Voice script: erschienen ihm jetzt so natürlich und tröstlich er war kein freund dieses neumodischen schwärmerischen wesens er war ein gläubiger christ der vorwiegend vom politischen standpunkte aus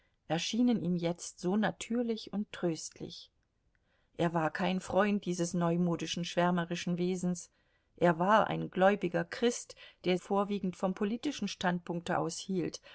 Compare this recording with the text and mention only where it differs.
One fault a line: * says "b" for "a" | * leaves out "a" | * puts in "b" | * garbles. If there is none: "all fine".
all fine